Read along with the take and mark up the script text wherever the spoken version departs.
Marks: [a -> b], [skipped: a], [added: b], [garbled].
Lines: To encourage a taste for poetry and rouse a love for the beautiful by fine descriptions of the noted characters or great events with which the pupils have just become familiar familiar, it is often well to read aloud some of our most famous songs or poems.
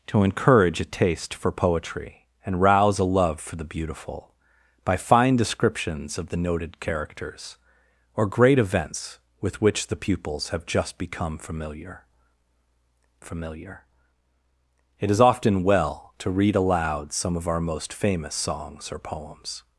To encourage a taste for poetry and rouse a love for the beautiful by fine descriptions of the noted characters or great events with which the pupils have just become familiar familiar, it is often well to read aloud some of our most famous songs or poems.